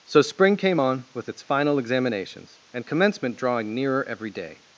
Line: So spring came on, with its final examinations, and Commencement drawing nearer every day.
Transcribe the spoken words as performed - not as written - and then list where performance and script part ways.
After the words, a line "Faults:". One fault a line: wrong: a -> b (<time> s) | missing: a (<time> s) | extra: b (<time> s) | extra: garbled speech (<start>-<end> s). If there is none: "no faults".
So spring came on, with its final examinations, and Commencement drawing nearer every day.
Faults:
no faults